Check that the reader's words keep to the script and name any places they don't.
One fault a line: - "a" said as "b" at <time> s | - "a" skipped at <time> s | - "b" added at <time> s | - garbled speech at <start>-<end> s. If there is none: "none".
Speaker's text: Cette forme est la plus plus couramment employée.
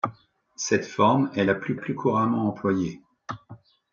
none